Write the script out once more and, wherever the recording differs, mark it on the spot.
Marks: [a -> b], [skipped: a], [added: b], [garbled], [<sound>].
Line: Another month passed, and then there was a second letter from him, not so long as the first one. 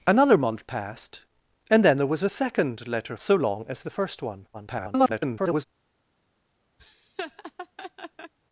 Another month passed, and then there was a second letter [skipped: from him, not] so long as the first one. [garbled] [laugh]